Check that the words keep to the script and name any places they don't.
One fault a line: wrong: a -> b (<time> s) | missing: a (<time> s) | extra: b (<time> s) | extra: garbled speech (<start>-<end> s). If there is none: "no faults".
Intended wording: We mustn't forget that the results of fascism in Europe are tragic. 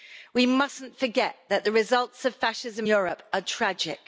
missing: in (2.9 s)